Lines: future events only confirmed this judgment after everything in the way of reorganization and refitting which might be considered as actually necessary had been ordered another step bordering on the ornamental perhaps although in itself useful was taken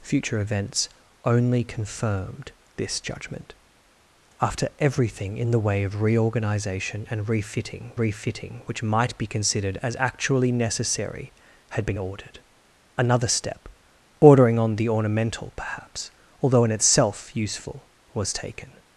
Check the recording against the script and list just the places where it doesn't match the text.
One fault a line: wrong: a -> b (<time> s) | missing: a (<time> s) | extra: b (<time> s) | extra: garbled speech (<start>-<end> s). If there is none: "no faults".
extra: refitting (8.0 s)